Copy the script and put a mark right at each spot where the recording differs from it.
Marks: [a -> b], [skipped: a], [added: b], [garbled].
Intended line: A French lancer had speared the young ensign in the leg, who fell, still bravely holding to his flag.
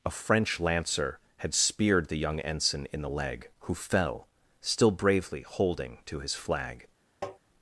A French lancer had speared the young ensign in the leg, who fell, still bravely holding to his flag.